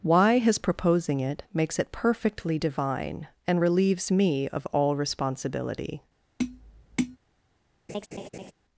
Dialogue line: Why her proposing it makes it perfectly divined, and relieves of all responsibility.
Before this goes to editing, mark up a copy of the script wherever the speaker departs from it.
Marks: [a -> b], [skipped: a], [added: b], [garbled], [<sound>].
Why [her -> his] proposing it makes it perfectly [divined, -> divine] and relieves [added: me] of all responsibility. [tap] [laugh]